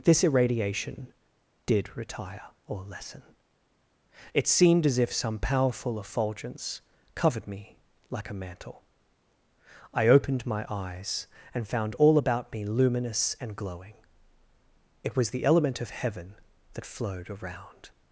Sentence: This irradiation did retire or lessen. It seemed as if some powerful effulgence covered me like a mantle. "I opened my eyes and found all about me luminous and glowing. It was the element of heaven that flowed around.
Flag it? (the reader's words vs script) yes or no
no